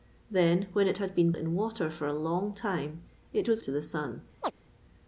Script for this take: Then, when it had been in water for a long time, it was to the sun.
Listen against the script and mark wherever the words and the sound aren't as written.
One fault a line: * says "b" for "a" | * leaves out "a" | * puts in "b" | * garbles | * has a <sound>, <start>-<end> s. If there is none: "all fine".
* has a chirp, 4.4-4.5 s